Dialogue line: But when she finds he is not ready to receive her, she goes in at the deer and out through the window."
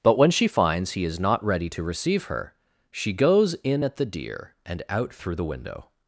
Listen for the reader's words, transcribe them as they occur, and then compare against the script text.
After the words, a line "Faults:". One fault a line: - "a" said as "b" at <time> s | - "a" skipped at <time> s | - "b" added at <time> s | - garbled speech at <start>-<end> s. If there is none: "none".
But when she finds he is not ready to receive her, she goes in at the deer and out through the window."
Faults:
none